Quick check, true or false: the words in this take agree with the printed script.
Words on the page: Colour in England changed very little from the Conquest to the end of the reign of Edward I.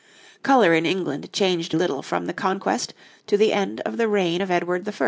false